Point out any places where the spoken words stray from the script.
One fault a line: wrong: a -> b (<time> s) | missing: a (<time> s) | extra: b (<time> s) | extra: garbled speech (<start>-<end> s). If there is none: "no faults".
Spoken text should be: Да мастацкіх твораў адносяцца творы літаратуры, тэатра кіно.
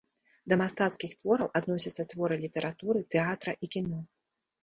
extra: і (3.6 s)